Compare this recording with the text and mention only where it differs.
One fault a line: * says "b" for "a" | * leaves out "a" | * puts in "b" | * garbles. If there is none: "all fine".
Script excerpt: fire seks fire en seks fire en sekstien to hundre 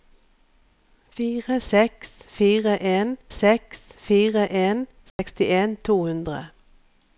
all fine